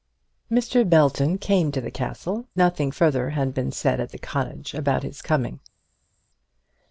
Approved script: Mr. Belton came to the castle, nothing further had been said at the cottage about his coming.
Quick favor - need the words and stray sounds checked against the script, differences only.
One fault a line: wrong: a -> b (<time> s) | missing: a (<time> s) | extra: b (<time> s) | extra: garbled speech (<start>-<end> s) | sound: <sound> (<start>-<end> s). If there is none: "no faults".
no faults